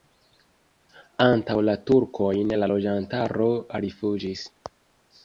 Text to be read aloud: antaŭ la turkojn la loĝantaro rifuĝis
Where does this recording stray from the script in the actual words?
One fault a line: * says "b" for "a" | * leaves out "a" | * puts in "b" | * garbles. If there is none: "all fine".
all fine